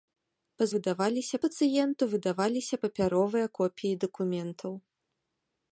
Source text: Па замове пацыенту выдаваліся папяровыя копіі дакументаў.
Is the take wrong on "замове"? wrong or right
wrong